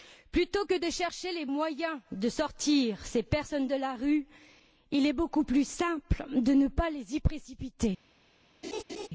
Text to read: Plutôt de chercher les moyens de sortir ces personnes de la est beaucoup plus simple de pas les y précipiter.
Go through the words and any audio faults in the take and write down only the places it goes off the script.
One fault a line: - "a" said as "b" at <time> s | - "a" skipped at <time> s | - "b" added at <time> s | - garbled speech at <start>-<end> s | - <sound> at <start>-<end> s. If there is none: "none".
- "que" added at 0.7 s
- "rue il" added at 3.9 s
- "ne" added at 6.5 s
- laugh at 8.6-9.1 s